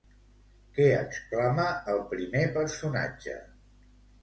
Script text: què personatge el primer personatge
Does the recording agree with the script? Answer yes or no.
no